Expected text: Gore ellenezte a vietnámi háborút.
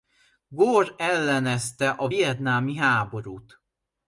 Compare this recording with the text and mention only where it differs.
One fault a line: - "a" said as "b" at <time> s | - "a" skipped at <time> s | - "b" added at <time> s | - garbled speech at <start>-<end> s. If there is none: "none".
none